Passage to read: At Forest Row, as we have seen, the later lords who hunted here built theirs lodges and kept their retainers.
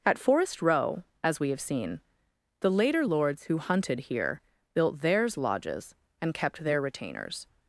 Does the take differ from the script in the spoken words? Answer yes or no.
no